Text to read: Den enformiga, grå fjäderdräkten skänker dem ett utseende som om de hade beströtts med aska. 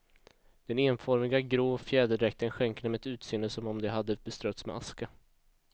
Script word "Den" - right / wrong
right